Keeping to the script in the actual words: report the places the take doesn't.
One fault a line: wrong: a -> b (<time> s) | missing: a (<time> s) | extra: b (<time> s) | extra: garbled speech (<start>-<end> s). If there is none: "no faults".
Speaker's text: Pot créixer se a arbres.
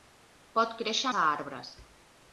no faults